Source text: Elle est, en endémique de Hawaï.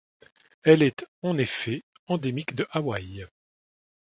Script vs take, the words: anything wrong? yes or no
yes